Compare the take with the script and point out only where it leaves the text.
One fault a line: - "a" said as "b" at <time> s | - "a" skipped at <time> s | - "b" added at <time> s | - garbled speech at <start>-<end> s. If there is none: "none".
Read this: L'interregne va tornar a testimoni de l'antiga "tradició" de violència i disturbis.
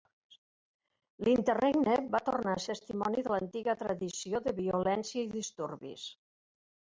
none